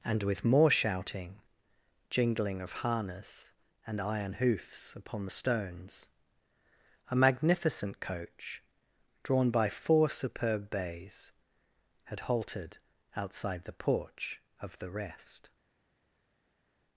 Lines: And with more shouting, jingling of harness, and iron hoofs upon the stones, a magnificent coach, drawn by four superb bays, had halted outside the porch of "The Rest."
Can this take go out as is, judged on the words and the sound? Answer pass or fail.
pass